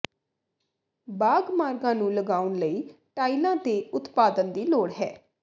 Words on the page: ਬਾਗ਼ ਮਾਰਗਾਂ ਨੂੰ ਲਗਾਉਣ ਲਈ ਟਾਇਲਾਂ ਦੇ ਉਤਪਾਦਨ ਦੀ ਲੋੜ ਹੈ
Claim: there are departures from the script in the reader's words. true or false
false